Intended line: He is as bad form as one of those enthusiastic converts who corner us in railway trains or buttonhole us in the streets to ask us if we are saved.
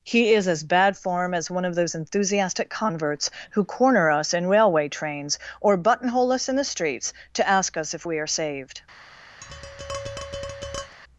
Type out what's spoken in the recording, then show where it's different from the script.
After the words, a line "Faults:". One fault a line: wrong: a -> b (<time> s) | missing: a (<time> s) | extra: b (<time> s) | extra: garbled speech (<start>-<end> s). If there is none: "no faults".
He is as bad form as one of those enthusiastic converts who corner us in railway trains or buttonhole us in the streets to ask us if we are saved.
Faults:
no faults